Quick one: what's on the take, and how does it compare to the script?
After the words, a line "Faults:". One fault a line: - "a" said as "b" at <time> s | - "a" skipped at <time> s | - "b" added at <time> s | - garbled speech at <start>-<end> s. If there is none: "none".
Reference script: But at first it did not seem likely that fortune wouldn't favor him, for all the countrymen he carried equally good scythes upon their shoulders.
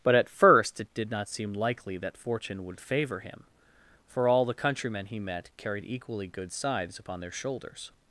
But at first it did not seem likely that fortune would favor him, for all the countrymen he met carried equally good scythes upon their shoulders.
Faults:
- "wouldn't" said as "would" at 2.6 s
- "met" added at 5.2 s